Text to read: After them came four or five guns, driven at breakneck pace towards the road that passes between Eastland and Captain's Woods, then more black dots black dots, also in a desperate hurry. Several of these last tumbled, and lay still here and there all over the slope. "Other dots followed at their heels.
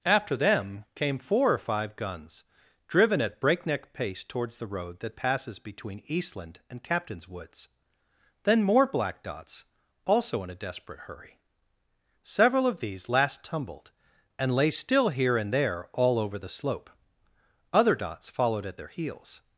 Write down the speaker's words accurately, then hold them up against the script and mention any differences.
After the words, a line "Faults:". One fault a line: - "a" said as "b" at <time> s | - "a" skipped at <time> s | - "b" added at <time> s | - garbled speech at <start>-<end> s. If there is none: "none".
After them came four or five guns, driven at breakneck pace towards the road that passes between Eastland and Captain's Woods, then more black dots, also in a desperate hurry. Several of these last tumbled, and lay still here and there all over the slope. "Other dots followed at their heels.
Faults:
- "black dots" skipped at 9.7 s